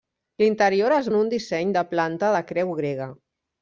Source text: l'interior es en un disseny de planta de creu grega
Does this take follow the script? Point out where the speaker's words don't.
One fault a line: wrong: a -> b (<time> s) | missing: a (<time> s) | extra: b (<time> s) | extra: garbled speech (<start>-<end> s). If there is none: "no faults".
no faults